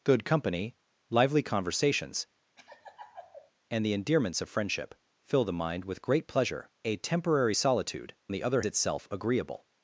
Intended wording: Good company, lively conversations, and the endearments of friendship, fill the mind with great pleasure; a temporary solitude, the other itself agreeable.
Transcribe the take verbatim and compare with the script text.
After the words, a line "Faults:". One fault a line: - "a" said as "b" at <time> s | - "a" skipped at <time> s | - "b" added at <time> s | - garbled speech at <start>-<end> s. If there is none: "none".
Good company, lively conversations, and the endearments of friendship, fill the mind with great pleasure; a temporary solitude, the other itself agreeable.
Faults:
none